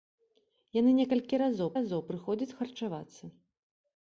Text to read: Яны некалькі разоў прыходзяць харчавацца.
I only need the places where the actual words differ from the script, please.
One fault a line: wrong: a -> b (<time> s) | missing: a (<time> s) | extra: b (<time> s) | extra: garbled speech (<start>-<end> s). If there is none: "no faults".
extra: разоў (1.7 s)